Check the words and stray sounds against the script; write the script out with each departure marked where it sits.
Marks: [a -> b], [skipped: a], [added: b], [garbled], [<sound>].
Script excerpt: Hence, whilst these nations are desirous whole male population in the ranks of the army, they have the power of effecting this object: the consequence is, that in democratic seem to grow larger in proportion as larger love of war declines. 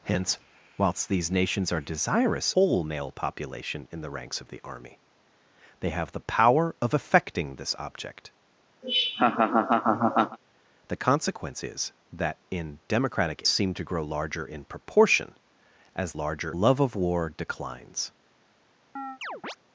Hence, whilst these nations are desirous whole male population in the ranks of the army, they have the power of effecting this object: [laugh] the consequence is, that in democratic seem to grow larger in proportion as larger love of war declines. [chirp]